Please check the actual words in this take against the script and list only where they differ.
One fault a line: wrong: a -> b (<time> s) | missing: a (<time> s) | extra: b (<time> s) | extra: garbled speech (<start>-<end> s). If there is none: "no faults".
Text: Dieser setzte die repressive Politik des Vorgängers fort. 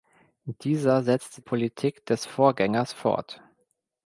missing: die repressive (1.4 s)